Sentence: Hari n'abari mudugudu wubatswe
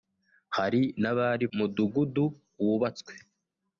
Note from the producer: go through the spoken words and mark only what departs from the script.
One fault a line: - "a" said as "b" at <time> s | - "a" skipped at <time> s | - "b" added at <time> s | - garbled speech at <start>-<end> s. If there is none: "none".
none